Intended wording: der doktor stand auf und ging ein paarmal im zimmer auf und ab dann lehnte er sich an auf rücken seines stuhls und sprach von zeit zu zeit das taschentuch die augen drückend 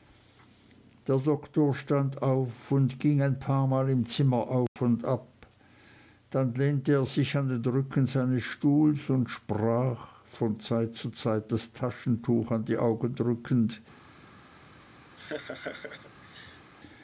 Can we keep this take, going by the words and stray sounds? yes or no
no